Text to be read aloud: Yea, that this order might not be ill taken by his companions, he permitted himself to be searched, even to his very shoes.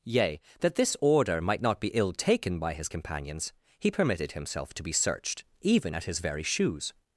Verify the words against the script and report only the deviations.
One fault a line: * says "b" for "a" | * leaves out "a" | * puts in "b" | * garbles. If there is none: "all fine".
* says "at" for "to"